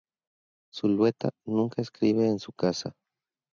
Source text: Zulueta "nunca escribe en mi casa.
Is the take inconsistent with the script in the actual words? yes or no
yes